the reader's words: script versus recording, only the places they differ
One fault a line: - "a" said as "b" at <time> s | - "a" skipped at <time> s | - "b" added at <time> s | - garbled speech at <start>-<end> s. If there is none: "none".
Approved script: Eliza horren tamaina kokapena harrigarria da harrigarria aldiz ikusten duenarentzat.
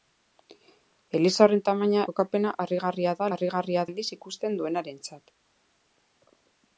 none